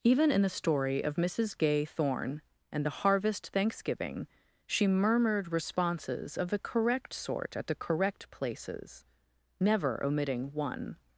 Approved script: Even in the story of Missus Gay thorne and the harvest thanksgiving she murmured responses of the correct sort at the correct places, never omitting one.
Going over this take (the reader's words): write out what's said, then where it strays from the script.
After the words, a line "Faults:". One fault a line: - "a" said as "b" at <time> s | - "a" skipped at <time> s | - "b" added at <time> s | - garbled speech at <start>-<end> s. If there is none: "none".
Even in the story of Missus Gay thorne and the harvest thanksgiving she murmured responses of the correct sort at the correct places, never omitting one.
Faults:
none